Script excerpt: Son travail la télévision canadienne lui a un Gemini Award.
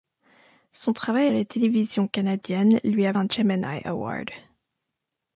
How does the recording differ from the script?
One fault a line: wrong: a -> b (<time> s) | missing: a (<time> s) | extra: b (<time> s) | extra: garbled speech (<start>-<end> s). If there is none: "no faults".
no faults